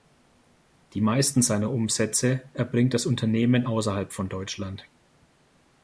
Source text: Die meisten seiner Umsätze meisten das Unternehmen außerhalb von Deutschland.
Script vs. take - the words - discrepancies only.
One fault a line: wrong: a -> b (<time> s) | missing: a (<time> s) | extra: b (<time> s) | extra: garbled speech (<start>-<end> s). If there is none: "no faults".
wrong: meisten -> erbringt (2.5 s)